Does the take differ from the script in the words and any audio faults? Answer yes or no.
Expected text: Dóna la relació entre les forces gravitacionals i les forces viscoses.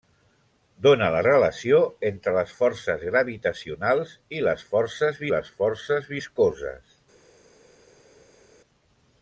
yes